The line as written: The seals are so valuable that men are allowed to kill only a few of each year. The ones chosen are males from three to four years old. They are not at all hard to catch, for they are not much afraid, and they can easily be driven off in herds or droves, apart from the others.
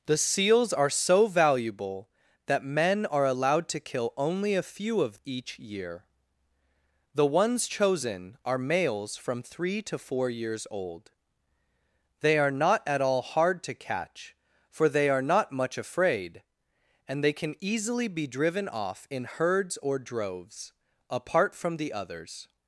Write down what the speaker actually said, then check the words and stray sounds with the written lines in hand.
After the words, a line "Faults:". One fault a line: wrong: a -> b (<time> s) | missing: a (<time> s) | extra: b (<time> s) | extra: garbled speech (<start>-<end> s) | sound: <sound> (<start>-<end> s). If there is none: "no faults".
The seals are so valuable that men are allowed to kill only a few of each year. The ones chosen are males from three to four years old. They are not at all hard to catch, for they are not much afraid, and they can easily be driven off in herds or droves, apart from the others.
Faults:
no faults